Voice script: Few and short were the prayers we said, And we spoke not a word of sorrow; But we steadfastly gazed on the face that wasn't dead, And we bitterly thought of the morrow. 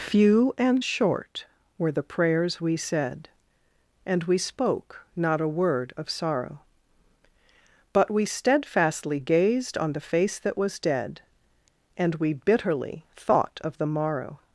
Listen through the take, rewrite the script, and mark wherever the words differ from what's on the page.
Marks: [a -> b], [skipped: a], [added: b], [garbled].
Few and short were the prayers we said, And we spoke not a word of sorrow; But we steadfastly gazed on the face that [wasn't -> was] dead, And we bitterly thought of the morrow.